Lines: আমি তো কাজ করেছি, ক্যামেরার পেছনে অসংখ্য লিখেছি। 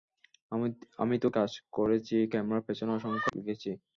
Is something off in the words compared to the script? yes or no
no